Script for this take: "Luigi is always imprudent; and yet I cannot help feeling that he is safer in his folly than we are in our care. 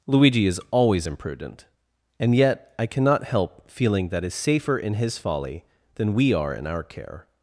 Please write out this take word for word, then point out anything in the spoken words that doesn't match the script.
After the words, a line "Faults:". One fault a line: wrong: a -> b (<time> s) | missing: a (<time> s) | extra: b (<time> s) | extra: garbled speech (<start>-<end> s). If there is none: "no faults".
"Luigi is always imprudent; and yet I cannot help feeling that is safer in his folly than we are in our care.
Faults:
missing: he (4.2 s)